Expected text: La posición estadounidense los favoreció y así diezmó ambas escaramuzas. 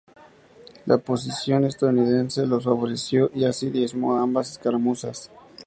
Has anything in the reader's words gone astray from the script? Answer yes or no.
no